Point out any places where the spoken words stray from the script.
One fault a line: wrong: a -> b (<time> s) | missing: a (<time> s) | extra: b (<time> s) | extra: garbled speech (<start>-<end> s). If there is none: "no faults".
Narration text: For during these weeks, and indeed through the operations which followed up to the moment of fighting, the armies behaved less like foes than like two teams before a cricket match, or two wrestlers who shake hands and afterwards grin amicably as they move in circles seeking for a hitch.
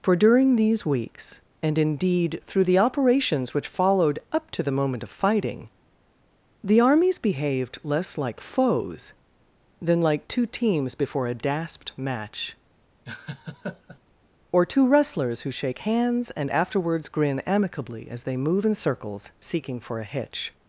wrong: cricket -> dasped (11.3 s)